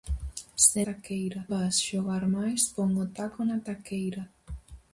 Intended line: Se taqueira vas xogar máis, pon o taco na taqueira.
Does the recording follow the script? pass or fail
pass